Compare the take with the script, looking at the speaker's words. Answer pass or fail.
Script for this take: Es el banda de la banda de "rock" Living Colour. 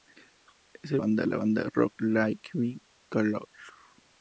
pass